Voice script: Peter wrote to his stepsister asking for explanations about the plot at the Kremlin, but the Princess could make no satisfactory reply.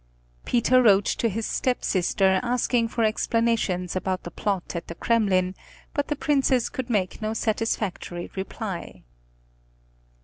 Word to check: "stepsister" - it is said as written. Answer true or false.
true